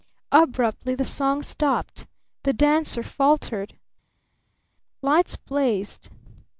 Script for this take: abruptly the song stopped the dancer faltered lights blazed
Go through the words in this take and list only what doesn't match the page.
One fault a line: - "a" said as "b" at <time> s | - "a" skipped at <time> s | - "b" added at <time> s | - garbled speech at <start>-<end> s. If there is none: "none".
none